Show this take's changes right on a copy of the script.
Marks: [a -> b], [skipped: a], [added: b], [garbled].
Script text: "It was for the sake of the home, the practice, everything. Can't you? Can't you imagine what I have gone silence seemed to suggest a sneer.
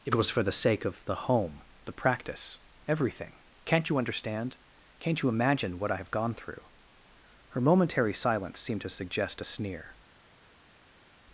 "It was for the sake of the home, the practice, everything. Can't you? [added: understand] Can't you imagine what I have gone [added: through Her momentary] silence seemed to suggest a sneer.